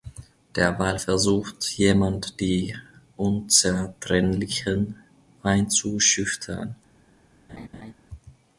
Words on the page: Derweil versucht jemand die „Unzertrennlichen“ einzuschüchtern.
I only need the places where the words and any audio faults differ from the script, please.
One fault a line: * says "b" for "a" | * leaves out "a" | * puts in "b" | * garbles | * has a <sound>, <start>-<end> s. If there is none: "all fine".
* has a laugh, 7.5-7.9 s